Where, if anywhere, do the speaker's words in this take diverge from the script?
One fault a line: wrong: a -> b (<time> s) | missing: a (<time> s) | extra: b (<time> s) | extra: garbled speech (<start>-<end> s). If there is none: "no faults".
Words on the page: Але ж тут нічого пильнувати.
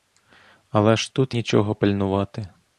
no faults